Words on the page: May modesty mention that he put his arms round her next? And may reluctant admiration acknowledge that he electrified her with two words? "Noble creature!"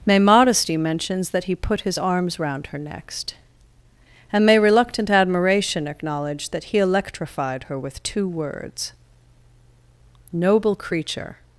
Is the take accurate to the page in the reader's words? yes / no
no